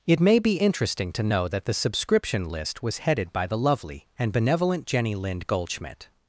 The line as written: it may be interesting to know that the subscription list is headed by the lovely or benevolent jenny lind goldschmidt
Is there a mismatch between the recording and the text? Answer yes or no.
yes